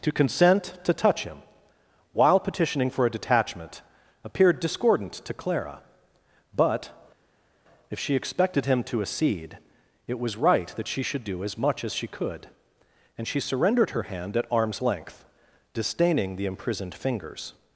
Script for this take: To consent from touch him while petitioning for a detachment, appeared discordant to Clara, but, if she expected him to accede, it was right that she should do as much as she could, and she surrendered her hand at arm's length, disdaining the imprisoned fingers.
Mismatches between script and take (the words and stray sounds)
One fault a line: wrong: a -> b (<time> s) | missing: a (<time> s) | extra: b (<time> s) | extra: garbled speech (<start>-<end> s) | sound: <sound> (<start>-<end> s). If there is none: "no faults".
wrong: from -> to (0.8 s)